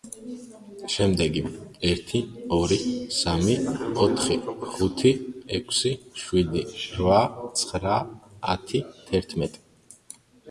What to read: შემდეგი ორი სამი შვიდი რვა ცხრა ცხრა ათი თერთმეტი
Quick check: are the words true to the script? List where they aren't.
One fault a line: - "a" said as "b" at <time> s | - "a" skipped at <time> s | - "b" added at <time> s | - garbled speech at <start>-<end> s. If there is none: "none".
- "ერთი" added at 1.9 s
- "ოთხი ხუთი ექვსი" added at 4.1 s
- "ცხრა" skipped at 8.0 s